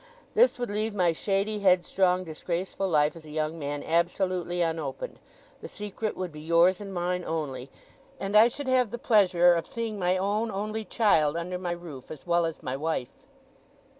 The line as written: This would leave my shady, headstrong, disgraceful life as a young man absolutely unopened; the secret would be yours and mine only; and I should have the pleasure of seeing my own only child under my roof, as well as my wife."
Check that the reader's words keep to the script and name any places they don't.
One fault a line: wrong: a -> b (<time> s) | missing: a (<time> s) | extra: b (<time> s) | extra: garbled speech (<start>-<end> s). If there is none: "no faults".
no faults